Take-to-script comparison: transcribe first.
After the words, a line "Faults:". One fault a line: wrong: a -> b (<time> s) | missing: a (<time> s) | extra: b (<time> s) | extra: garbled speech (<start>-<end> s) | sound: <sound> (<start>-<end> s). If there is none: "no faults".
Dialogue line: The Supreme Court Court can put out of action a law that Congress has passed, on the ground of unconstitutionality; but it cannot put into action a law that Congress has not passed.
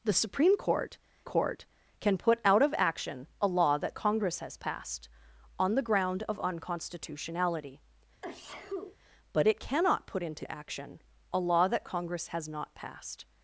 The Supreme Court Court can put out of action a law that Congress has passed, on the ground of unconstitutionality; but it cannot put into action a law that Congress has not passed.
Faults:
sound: sneeze (8.2-9.0 s)